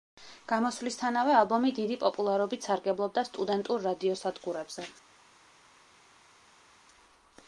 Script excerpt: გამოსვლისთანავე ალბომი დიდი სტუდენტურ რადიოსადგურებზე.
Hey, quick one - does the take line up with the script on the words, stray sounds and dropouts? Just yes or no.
no